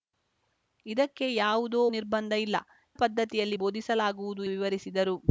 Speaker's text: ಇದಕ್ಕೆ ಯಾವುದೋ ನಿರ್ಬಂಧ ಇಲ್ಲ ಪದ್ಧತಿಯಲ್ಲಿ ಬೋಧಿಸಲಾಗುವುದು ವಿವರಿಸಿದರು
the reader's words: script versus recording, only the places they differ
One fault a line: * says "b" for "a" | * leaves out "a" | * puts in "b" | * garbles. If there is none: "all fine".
all fine